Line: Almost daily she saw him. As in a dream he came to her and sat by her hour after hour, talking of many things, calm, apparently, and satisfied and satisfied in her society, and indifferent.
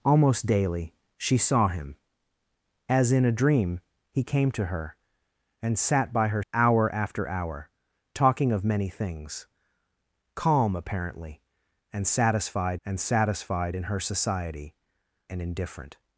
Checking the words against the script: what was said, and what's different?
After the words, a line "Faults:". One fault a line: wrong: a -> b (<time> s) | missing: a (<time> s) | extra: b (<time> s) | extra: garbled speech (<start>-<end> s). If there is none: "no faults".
Almost daily she saw him. As in a dream he came to her and sat by her hour after hour, talking of many things, calm, apparently, and satisfied and satisfied in her society, and indifferent.
Faults:
no faults